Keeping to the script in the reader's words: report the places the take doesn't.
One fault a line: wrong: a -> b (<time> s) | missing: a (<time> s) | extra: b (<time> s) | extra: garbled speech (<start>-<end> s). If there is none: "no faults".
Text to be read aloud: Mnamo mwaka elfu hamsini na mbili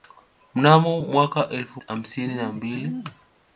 no faults